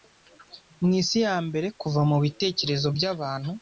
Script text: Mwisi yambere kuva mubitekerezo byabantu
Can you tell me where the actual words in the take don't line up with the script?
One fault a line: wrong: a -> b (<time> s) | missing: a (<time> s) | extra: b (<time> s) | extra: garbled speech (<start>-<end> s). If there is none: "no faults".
no faults